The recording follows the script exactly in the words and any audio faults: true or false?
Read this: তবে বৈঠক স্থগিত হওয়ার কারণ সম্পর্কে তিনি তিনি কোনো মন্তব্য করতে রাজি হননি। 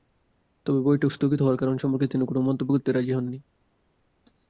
false